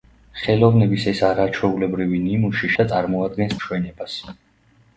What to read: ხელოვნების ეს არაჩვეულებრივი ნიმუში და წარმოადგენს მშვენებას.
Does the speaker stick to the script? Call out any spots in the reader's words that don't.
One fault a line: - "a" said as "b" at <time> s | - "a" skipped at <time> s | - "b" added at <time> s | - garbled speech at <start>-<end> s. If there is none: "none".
none